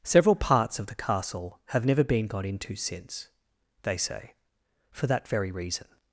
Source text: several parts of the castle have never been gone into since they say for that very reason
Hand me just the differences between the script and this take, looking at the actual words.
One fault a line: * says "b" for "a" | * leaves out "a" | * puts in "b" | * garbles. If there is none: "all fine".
* says "got" for "gone"